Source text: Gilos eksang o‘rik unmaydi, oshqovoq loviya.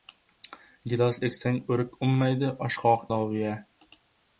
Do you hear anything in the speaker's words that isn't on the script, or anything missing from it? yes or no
no